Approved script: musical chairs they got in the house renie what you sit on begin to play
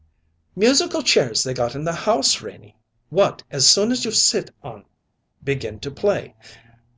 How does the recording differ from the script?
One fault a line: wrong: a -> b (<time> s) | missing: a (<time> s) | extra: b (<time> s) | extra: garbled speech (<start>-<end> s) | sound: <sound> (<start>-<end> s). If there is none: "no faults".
extra: as soon as (3.5 s)